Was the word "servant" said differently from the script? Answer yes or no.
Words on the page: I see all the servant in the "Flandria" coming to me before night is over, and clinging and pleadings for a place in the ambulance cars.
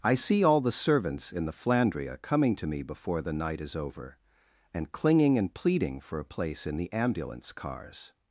yes